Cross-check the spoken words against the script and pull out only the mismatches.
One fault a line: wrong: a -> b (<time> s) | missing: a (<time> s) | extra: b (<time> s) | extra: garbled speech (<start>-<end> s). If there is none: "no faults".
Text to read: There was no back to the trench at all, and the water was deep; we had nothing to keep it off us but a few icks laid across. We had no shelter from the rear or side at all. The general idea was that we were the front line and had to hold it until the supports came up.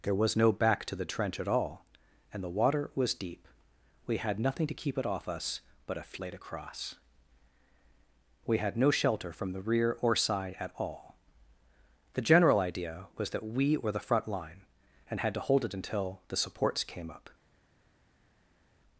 missing: few icks (6.2 s)